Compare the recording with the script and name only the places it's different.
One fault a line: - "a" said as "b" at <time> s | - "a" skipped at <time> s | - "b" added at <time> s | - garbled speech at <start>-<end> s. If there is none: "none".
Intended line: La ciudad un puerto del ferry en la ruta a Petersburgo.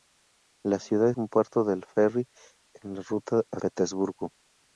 none